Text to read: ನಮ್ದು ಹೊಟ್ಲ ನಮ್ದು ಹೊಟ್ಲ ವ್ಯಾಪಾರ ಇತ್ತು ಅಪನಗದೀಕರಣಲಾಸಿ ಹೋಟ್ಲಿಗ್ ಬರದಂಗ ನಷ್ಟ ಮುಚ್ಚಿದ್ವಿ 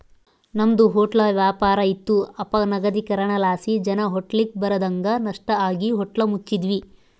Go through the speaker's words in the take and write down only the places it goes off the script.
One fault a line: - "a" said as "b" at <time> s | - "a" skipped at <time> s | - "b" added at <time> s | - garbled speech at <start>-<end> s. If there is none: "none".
- "ನಮ್ದು ಹೊಟ್ಲ" skipped at 1.2 s
- "ಜನ" added at 3.8 s
- "ಆಗಿ ಹೋಟ್ಲ" added at 5.7 s